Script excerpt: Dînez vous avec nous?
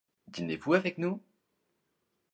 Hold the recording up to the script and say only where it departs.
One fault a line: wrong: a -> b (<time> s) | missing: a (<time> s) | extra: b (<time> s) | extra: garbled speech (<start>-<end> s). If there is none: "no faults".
no faults